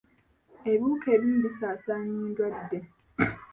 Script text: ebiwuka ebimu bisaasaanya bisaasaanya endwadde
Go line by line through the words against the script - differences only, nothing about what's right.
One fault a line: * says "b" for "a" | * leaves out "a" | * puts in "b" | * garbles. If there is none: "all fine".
* leaves out "bisaasaanya"